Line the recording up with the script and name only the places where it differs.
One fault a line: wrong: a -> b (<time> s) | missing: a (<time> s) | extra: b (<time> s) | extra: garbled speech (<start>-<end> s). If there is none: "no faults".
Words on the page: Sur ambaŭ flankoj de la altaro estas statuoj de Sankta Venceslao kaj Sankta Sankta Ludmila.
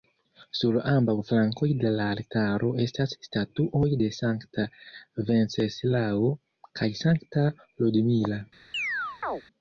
missing: Sankta (7.5 s)